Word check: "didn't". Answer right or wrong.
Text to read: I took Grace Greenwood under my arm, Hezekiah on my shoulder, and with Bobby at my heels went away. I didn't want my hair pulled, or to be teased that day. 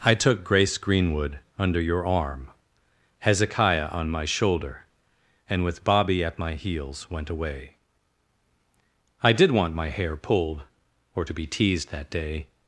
wrong